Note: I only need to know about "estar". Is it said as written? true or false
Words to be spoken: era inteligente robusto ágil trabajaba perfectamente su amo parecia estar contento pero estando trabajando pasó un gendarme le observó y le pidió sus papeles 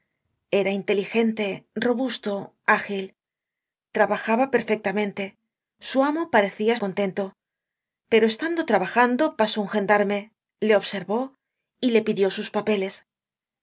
false